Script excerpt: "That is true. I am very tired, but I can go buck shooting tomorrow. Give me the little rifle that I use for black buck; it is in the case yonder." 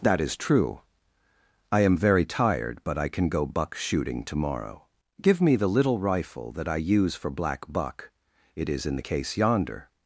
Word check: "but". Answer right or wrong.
right